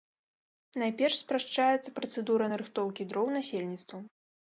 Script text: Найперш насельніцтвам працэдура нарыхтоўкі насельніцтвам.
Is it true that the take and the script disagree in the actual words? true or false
true